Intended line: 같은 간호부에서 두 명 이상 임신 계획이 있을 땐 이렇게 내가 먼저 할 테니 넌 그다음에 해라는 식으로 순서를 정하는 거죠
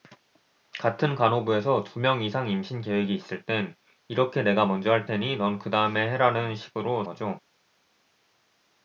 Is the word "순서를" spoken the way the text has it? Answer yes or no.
no